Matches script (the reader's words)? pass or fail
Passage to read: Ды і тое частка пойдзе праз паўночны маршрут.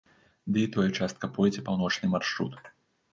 fail